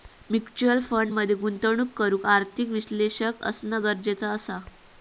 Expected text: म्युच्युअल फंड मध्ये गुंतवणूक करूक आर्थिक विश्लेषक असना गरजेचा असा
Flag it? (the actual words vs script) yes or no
no